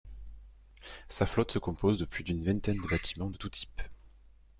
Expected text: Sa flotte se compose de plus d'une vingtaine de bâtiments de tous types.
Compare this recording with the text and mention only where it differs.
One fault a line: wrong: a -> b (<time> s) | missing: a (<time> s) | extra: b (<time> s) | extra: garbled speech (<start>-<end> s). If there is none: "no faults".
no faults